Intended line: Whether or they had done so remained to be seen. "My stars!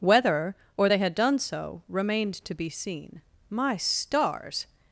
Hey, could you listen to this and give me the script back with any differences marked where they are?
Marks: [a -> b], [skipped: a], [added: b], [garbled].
Whether or they had done so remained to be seen. "My stars!